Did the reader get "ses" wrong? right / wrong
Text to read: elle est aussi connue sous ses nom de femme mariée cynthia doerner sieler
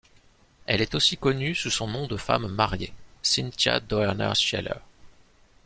wrong